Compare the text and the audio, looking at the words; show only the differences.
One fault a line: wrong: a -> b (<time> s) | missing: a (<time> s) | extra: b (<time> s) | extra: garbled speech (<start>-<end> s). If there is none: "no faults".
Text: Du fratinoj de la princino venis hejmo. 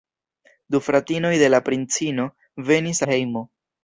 no faults